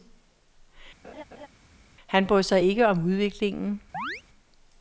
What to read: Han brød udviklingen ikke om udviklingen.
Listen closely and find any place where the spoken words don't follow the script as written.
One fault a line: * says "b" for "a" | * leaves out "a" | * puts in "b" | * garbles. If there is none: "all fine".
* says "sig" for "udviklingen"